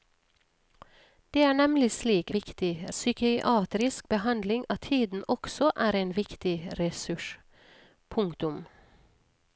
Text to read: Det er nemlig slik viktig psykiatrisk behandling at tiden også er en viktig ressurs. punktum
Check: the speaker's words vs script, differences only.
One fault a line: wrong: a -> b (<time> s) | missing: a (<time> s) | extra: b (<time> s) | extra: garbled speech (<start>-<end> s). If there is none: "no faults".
no faults